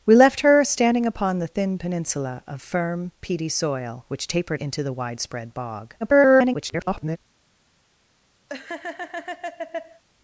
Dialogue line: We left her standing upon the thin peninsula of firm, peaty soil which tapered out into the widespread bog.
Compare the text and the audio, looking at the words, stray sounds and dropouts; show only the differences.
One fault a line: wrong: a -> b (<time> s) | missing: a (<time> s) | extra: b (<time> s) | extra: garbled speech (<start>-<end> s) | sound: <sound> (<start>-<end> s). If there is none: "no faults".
missing: out (4.6 s)
extra: garbled speech (6.0-7.2 s)
sound: laugh (8.5-10.0 s)